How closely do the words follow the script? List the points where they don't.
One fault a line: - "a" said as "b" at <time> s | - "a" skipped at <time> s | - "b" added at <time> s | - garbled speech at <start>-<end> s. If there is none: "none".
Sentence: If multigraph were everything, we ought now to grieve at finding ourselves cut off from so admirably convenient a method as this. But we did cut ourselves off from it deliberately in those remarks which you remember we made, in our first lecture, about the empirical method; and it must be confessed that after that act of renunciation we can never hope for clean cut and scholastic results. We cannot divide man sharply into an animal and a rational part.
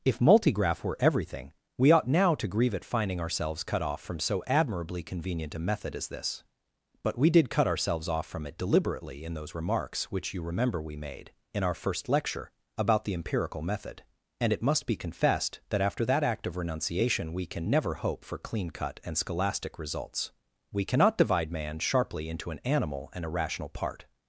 none